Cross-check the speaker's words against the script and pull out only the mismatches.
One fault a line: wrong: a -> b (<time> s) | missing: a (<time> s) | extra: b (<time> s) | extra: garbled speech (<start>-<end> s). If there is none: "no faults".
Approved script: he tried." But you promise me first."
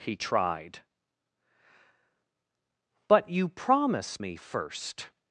no faults